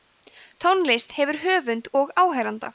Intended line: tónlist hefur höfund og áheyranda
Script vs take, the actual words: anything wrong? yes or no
no